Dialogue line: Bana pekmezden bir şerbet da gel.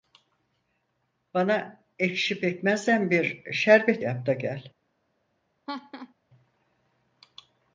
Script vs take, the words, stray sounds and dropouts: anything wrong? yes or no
yes